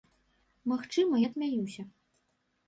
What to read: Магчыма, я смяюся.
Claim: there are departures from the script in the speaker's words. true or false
false